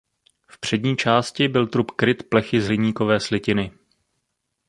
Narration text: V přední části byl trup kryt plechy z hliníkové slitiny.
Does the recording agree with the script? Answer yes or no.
yes